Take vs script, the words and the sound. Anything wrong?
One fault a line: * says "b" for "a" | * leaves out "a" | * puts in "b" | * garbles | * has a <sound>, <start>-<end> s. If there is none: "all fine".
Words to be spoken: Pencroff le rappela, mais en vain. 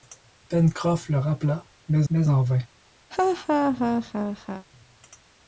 * puts in "mais"
* has a laugh, 3.1-4.7 s